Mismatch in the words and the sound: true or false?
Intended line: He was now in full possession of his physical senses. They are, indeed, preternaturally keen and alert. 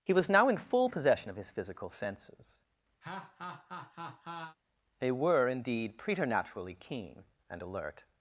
true